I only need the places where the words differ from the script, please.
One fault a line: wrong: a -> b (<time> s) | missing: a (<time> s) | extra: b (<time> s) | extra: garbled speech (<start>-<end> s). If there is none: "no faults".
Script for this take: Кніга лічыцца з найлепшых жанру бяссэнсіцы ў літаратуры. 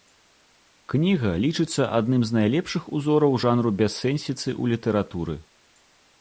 extra: адным (2.0 s)
extra: узораў (3.0 s)